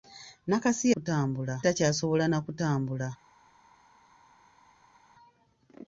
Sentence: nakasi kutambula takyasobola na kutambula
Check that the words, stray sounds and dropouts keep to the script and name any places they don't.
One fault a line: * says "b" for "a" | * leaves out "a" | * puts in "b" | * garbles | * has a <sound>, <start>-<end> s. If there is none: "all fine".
all fine